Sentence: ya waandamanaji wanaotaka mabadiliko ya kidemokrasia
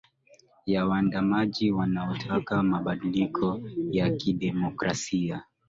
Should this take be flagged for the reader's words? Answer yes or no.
no